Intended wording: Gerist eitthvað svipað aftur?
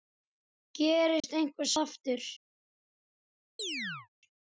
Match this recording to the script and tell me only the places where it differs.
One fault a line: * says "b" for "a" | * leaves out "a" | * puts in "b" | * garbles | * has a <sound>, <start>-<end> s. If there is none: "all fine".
* has a dropout, 1.2-1.2 s
* leaves out "svipað"
* has a chirp, 3.6-4.1 s